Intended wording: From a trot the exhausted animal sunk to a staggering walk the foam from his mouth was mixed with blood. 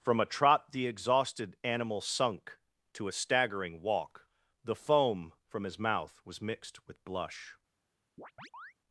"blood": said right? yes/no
no